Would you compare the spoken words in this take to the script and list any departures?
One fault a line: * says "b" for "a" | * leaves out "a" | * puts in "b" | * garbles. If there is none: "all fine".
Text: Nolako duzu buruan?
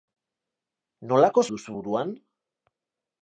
all fine